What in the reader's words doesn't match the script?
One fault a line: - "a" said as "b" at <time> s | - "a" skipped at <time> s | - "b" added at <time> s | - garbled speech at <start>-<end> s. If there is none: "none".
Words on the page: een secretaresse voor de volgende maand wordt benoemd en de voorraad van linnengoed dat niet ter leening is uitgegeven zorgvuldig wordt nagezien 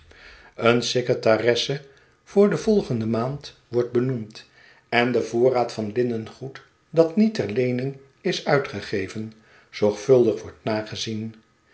none